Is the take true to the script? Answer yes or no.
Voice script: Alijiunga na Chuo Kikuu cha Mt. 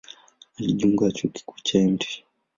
yes